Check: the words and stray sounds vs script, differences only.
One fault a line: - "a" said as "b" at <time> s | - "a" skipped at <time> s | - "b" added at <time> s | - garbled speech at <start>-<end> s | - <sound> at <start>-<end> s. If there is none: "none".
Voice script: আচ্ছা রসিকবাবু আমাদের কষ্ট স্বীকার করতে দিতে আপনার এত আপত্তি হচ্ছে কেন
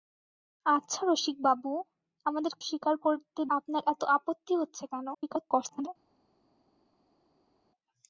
- "কষ্ট" skipped at 2.5 s
- "দিতে" skipped at 3.4 s
- garbled speech at 5.1-5.9 s